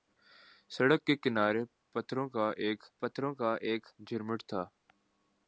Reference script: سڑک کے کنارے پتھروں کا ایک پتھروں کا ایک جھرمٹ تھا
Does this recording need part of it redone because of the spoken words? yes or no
no